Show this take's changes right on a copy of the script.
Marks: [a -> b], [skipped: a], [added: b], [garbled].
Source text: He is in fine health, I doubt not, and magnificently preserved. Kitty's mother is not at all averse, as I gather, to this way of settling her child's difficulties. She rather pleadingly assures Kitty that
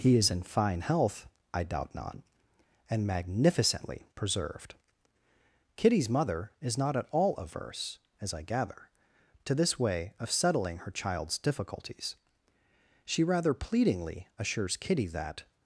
He is in fine health, I doubt not, and magnificently preserved. Kitty's mother is not at all averse, as I gather, to this way of settling her child's difficulties. She rather pleadingly assures Kitty that